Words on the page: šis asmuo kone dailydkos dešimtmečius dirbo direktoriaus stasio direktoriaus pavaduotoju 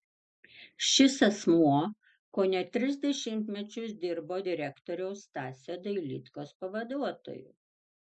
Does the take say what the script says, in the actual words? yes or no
no